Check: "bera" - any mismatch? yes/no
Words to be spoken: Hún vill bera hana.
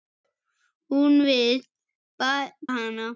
yes